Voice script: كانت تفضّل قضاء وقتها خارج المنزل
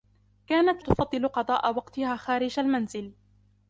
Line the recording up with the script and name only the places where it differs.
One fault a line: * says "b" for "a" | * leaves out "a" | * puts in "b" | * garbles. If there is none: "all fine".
all fine